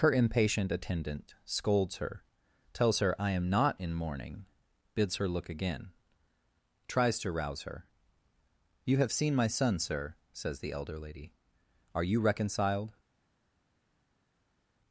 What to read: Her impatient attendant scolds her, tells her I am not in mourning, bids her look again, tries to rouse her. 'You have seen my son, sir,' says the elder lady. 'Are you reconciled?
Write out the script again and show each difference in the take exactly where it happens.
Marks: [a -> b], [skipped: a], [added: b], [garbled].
Her impatient attendant scolds her, tells her I am not in mourning, bids her look again, tries to rouse her. 'You have seen my son, sir,' says the elder lady. 'Are you reconciled?